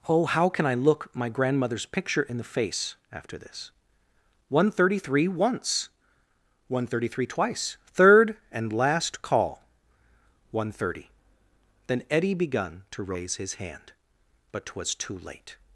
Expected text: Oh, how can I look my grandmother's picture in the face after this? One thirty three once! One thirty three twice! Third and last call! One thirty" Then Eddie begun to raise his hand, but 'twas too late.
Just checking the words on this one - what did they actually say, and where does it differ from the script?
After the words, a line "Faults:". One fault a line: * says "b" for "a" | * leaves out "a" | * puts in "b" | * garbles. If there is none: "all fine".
Oh, how can I look my grandmother's picture in the face after this? One thirty three once! One thirty three twice! Third and last call! One thirty" Then Eddie begun to raise his hand, but 'twas too late.
Faults:
all fine